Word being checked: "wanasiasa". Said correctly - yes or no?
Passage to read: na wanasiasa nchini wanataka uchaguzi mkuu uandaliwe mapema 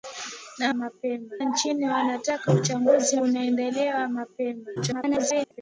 no